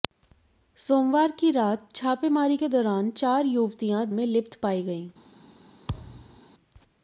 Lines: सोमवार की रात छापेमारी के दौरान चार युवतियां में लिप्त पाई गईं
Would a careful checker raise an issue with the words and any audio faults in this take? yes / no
yes